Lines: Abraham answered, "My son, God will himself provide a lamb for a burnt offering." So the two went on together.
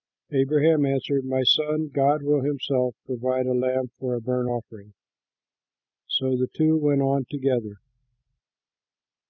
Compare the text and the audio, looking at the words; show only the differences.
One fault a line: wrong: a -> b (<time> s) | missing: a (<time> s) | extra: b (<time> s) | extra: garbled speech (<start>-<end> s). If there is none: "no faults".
no faults